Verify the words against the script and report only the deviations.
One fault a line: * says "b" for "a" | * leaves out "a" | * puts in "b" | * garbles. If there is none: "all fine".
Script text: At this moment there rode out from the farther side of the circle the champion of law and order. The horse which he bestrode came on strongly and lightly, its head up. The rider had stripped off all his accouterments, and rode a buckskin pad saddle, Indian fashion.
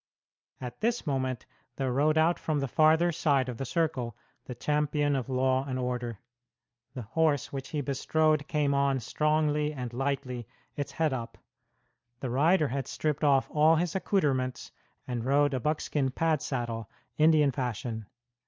all fine